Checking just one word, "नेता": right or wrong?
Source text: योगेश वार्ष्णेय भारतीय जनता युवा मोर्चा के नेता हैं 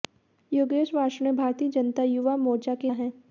wrong